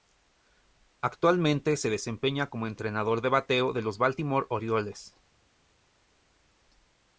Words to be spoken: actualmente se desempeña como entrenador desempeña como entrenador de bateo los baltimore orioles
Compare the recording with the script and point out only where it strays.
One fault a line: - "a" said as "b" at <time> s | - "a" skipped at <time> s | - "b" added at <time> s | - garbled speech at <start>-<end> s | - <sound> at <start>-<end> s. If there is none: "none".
- "desempeña como entrenador" said as "de bateo" at 3.2 s
- "bateo" skipped at 3.8 s